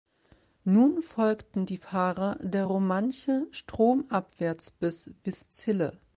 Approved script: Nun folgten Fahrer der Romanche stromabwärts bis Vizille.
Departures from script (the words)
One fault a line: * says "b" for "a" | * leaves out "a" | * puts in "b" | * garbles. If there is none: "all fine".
* puts in "die"